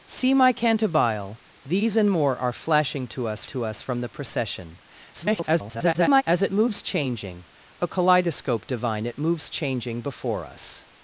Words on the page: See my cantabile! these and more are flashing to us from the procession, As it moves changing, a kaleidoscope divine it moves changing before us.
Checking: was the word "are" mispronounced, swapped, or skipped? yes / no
no